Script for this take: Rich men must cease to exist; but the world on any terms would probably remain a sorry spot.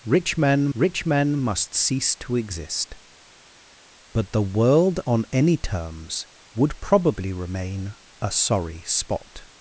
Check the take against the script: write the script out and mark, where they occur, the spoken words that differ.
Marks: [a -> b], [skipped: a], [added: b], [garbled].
Rich men [added: rich men] must cease to exist; but the world on any terms would probably remain a sorry spot.